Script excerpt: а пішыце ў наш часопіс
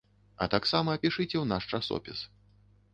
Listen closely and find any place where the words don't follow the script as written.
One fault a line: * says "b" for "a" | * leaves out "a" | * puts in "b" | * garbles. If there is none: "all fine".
* puts in "таксама"